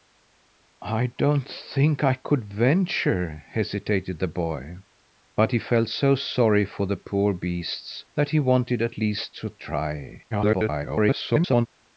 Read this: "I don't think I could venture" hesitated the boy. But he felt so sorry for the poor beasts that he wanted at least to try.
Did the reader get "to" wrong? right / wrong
right